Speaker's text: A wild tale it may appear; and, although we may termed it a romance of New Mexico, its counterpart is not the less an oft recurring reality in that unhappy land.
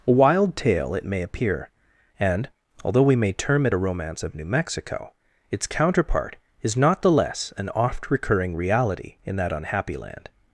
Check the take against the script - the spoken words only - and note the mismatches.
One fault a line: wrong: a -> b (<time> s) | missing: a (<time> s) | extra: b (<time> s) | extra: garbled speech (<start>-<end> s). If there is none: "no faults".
wrong: termed -> term (3.3 s)